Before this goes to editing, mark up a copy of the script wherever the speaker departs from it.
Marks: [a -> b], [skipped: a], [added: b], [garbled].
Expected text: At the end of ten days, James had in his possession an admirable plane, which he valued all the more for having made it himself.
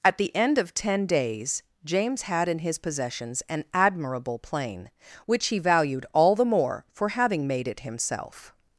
At the end of ten days, James had in his [possession -> possessions] an admirable plane, which he valued all the more for having made it himself.